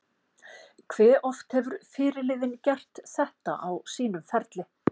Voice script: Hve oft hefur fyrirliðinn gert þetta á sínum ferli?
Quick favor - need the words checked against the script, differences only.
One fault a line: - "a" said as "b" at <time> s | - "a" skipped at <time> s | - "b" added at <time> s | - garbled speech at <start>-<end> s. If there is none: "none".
none